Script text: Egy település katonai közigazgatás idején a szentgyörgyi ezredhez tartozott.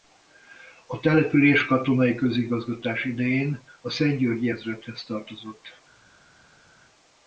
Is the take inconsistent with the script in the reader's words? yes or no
yes